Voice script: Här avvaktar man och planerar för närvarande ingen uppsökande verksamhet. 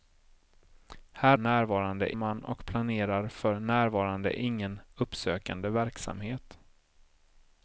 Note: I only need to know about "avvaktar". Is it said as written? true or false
false